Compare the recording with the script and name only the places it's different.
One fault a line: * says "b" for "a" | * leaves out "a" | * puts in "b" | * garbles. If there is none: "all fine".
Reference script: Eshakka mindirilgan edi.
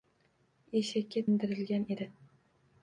all fine